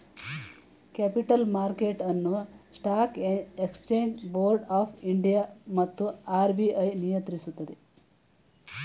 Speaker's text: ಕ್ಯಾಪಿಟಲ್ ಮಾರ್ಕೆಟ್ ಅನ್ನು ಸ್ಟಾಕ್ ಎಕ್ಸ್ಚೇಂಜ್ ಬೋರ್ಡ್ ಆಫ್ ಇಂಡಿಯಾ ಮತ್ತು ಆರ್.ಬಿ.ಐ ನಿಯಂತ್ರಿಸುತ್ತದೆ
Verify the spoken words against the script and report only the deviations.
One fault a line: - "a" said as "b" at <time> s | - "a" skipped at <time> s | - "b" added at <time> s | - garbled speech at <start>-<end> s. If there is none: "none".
none